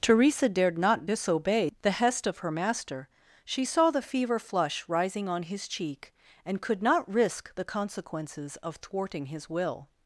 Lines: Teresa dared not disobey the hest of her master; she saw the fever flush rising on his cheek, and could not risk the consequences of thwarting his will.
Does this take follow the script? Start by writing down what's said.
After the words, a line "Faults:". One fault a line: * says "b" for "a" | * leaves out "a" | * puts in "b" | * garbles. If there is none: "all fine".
Teresa dared not disobey the hest of her master; she saw the fever flush rising on his cheek, and could not risk the consequences of thwarting his will.
Faults:
all fine